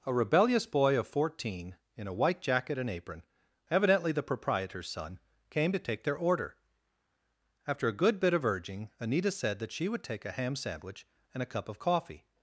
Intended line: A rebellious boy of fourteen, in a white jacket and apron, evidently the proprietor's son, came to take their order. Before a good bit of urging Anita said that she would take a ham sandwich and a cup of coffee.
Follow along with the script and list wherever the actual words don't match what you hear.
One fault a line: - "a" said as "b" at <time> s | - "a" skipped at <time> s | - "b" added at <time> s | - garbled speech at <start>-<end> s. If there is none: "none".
- "Before" said as "After" at 7.7 s